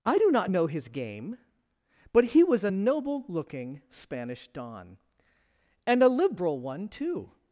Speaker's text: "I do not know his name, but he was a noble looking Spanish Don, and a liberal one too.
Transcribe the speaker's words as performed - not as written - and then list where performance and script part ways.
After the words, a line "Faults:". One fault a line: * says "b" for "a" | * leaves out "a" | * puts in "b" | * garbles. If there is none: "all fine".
"I do not know his game, but he was a noble looking Spanish Don, and a liberal one too.
Faults:
* says "game" for "name"